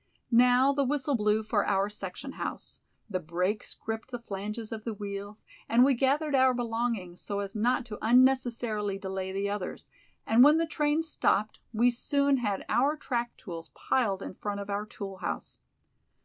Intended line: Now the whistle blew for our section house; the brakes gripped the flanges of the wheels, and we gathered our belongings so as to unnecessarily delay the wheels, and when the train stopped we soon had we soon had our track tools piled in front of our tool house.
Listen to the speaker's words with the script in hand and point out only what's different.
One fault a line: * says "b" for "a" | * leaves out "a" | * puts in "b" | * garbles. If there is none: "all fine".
* puts in "not"
* says "others" for "wheels"
* leaves out "we soon had"